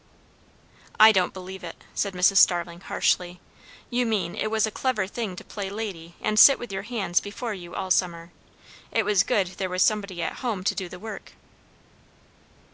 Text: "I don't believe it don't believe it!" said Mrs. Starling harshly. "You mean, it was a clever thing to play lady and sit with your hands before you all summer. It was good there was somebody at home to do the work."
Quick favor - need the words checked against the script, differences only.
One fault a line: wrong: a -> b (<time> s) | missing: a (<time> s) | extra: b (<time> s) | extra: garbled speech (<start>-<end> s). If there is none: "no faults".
missing: don't believe it (1.8 s)